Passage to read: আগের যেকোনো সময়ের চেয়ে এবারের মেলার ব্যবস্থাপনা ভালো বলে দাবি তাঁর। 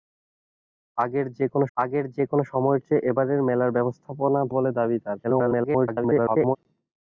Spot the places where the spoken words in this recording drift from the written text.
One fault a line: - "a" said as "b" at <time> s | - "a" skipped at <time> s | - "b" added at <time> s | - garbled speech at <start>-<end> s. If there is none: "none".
- "আগের যেকোনো" added at 1.8 s
- "ভালো" skipped at 4.4 s
- garbled speech at 5.2-6.6 s